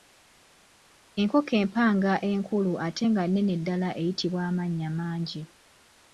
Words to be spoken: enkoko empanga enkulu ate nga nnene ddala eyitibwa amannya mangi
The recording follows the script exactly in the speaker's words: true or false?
true